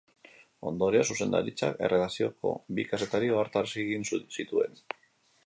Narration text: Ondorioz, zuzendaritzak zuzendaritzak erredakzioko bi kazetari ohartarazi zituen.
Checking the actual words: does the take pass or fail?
fail